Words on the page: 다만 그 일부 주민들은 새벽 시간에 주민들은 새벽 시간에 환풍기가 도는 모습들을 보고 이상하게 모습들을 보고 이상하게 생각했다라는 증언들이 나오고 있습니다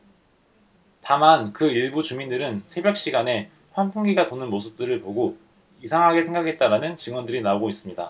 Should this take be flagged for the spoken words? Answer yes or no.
yes